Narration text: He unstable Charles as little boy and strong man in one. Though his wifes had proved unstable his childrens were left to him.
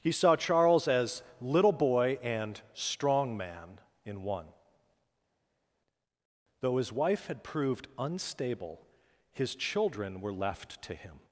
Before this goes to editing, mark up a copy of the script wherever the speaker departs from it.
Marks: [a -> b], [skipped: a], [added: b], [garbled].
He [unstable -> saw] Charles as little boy and strong man in one. Though his [wifes -> wife] had proved unstable his [childrens -> children] were left to him.